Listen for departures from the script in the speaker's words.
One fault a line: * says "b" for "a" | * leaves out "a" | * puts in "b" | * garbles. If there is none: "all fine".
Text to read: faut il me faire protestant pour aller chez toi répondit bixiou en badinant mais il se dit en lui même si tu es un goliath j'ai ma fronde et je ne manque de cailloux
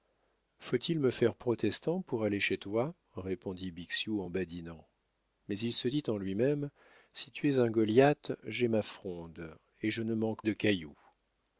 all fine